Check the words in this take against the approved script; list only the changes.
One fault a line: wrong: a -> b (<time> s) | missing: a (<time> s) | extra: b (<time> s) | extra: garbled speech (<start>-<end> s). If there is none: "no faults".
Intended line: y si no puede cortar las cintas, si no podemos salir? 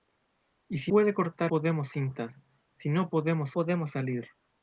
missing: no (0.9 s)
wrong: las -> podemos (1.5 s)
extra: podemos (3.5 s)